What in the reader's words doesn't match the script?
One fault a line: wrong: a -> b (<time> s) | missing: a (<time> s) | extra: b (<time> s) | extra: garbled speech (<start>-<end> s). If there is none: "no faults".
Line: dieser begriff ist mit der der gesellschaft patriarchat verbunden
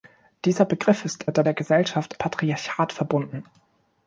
no faults